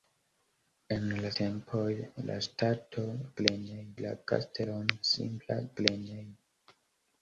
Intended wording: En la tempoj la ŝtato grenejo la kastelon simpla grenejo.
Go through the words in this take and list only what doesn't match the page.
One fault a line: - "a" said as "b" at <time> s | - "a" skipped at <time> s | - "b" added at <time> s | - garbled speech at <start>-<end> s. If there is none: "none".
none